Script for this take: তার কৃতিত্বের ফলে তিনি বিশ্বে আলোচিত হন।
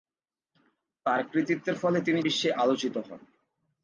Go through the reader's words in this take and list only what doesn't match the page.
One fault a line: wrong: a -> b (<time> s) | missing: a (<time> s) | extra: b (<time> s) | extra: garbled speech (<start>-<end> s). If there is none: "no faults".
no faults